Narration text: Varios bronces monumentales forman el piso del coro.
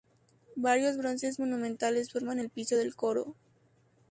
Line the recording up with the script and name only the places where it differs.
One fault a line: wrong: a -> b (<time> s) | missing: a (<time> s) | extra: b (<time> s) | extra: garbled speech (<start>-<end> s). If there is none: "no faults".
no faults